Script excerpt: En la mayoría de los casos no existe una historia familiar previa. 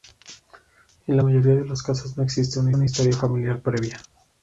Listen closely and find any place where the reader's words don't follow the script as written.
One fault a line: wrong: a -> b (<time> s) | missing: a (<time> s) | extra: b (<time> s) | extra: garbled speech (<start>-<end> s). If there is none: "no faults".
extra: una (2.7 s)